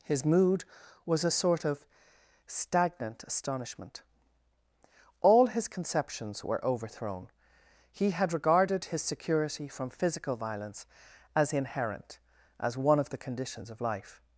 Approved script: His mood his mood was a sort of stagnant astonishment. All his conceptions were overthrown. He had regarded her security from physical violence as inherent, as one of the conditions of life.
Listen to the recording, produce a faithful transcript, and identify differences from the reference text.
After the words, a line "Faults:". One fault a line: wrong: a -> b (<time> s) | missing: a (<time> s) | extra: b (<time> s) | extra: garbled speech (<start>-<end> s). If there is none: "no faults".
His mood was a sort of stagnant astonishment. All his conceptions were overthrown. He had regarded his security from physical violence as inherent, as one of the conditions of life.
Faults:
missing: his mood (0.7 s)
wrong: her -> his (8.9 s)